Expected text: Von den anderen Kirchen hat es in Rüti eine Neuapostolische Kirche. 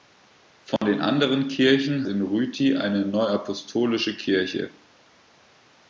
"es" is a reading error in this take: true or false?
true